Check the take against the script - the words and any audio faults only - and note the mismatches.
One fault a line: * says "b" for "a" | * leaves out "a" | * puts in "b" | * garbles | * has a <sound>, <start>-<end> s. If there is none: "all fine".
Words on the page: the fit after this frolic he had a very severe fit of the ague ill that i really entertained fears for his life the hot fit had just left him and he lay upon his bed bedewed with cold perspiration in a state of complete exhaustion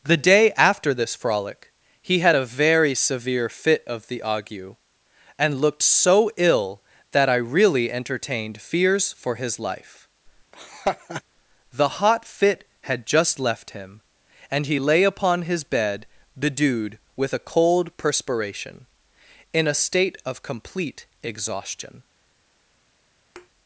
* says "day" for "fit"
* puts in "and looked so"
* has a laugh, 10.5-11.2 s
* puts in "a"
* has a thud, 23.4-23.5 s